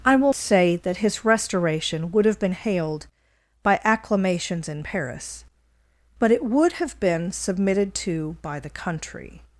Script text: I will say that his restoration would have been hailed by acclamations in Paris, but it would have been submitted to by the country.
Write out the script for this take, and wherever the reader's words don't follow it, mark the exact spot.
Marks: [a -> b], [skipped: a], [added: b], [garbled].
I will say that his restoration would have been hailed by acclamations in Paris, but it would have been submitted to by the country.